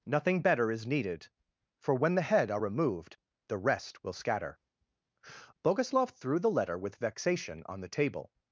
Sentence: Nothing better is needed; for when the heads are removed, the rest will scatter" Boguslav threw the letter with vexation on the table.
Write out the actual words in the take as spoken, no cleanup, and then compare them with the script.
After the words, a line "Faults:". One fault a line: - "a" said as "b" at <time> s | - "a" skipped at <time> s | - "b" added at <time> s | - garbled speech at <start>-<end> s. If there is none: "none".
Nothing better is needed; for when the head are removed, the rest will scatter" Boguslav threw the letter with vexation on the table.
Faults:
- "heads" said as "head" at 2.2 s